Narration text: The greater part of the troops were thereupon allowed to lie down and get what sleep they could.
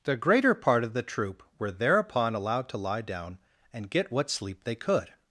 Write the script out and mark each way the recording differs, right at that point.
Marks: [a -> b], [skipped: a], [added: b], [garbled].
The greater part of the [troops -> troop] were thereupon allowed to lie down and get what sleep they could.